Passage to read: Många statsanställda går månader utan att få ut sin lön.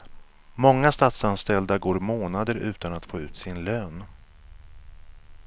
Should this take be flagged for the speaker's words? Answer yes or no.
no